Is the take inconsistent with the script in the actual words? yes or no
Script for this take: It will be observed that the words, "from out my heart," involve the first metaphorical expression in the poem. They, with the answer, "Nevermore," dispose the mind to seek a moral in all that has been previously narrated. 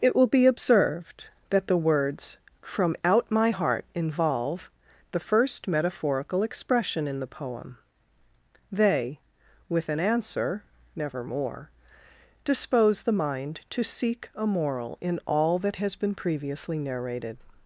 yes